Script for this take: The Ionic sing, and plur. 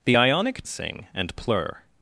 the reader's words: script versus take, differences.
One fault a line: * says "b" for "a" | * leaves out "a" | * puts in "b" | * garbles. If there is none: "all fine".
all fine